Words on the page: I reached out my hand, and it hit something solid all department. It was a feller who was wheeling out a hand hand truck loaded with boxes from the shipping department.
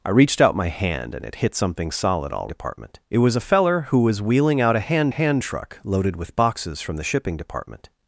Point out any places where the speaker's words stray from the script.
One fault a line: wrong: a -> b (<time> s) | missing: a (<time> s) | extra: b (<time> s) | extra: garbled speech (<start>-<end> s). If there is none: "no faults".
no faults